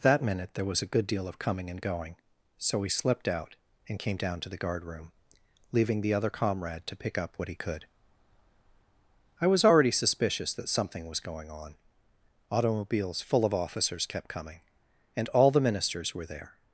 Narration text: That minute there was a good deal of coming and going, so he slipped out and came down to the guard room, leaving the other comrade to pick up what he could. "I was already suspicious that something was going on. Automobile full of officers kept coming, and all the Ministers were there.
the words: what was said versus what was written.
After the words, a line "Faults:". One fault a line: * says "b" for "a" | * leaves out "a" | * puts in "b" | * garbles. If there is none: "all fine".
That minute there was a good deal of coming and going, so he slipped out and came down to the guard room, leaving the other comrade to pick up what he could. "I was already suspicious that something was going on. Automobiles full of officers kept coming, and all the Ministers were there.
Faults:
* says "Automobiles" for "Automobile"